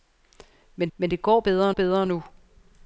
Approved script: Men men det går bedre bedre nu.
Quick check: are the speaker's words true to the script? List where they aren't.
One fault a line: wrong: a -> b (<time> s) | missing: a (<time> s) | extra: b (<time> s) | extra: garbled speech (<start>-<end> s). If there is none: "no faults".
no faults